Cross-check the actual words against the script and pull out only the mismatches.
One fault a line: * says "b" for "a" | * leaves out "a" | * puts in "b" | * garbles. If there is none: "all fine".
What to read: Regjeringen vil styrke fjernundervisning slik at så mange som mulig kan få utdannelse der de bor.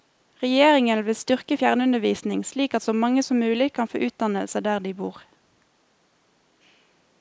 all fine